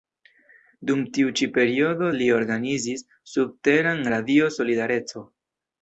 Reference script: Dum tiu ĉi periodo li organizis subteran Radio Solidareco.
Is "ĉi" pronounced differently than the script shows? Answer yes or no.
no